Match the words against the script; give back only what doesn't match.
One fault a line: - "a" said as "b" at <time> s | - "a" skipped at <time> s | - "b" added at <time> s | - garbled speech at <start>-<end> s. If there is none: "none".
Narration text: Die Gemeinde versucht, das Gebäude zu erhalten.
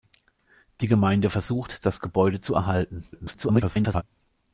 - garbled speech at 3.1-4.0 s